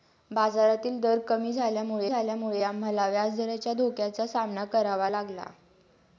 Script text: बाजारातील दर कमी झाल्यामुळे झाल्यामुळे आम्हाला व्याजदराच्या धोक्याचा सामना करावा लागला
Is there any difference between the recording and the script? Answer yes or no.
no